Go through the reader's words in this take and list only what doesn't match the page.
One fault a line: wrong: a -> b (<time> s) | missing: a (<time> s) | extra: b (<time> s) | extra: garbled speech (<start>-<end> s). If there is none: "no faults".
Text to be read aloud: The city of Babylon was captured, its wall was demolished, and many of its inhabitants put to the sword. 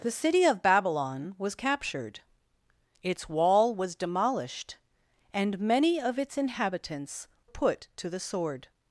no faults